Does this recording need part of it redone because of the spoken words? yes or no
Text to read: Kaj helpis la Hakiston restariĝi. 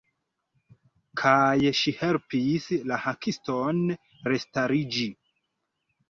yes